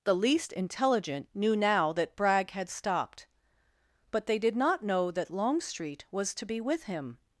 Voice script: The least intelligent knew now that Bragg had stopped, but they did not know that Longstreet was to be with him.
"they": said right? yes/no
yes